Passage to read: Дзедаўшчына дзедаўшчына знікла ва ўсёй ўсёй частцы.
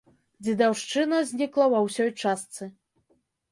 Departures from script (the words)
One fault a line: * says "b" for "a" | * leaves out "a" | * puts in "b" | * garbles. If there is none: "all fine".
* leaves out "дзедаўшчына"
* leaves out "ўсёй"